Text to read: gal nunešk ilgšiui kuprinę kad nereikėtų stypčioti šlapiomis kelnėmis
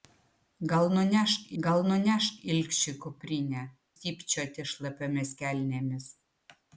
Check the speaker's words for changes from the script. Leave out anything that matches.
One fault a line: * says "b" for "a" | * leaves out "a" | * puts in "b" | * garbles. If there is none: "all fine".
* puts in "gal nunešk"
* leaves out "kad nereikėtų"